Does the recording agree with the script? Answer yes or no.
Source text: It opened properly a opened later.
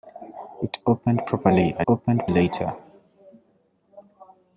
yes